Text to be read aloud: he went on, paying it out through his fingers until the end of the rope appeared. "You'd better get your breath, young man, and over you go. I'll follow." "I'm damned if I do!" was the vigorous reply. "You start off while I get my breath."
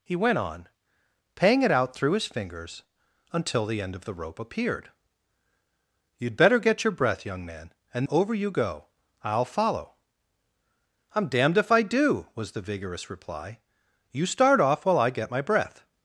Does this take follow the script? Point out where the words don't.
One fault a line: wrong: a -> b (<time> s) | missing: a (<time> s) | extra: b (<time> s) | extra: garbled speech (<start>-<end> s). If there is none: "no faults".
no faults